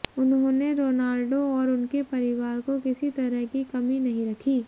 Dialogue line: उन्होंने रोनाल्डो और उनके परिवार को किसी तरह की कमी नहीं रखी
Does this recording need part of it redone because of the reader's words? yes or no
no